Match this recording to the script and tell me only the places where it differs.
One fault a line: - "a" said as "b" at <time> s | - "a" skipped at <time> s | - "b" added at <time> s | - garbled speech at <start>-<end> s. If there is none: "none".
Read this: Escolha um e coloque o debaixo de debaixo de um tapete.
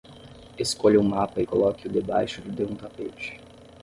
- "mapa" added at 1.0 s
- "debaixo de" skipped at 2.6 s